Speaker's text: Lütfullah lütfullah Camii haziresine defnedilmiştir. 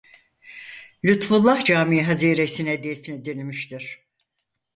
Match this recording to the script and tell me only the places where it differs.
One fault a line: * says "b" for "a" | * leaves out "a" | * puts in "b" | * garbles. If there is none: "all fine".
* leaves out "lütfullah"